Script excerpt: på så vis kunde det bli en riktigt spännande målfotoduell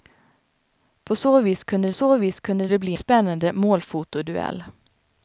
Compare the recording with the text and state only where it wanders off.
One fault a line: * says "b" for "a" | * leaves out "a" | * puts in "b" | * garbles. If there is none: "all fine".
* puts in "så vis kunde"
* leaves out "en riktigt"